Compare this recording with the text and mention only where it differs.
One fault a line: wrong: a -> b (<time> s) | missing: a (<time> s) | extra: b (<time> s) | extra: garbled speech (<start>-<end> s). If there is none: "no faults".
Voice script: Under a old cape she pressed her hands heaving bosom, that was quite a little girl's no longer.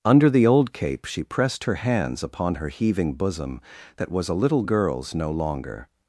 wrong: a -> the (0.3 s)
extra: upon her (2.2 s)
missing: quite (4.3 s)